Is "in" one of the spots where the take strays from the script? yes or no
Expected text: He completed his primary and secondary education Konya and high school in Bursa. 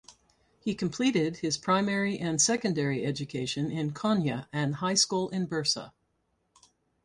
no